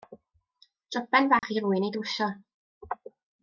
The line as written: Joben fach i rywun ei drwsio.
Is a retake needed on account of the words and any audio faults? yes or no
yes